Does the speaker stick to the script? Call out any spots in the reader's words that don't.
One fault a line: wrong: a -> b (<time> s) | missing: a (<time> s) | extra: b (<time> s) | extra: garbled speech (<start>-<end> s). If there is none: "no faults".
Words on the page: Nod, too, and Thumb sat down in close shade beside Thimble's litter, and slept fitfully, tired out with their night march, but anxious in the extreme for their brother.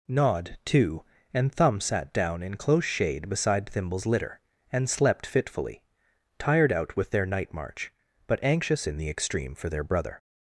no faults